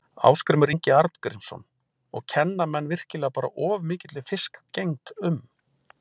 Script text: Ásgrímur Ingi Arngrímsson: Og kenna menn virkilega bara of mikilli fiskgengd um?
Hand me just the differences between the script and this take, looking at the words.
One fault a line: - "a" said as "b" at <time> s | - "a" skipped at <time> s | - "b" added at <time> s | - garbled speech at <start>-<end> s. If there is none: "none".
none